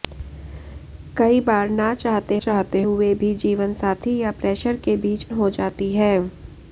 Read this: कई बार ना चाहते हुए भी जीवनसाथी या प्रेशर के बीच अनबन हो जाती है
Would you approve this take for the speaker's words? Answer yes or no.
no